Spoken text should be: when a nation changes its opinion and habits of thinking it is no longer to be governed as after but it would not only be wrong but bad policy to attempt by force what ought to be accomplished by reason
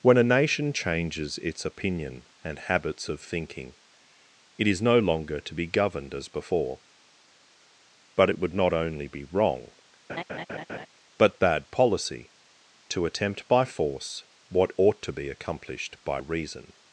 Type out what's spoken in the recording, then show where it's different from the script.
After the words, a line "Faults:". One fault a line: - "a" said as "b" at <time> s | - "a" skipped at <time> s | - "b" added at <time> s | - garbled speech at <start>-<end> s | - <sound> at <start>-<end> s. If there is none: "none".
when a nation changes its opinion and habits of thinking it is no longer to be governed as before but it would not only be wrong but bad policy to attempt by force what ought to be accomplished by reason
Faults:
- "after" said as "before" at 6.3 s
- laugh at 10.1-10.9 s